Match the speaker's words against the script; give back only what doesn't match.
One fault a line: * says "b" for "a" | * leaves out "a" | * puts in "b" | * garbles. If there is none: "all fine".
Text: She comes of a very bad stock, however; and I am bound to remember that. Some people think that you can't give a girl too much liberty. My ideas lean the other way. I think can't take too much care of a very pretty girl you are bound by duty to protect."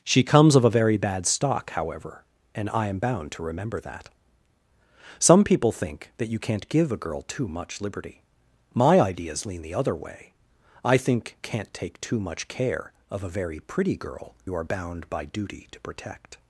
all fine